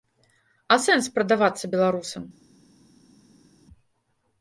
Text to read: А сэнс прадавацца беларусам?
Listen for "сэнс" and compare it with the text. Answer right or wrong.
right